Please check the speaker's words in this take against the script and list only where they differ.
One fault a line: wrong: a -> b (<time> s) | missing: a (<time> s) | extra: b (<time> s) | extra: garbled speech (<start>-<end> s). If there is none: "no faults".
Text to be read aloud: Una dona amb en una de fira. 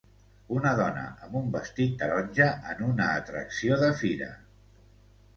extra: un vestit taronja (1.4 s)
extra: atracció (3.2 s)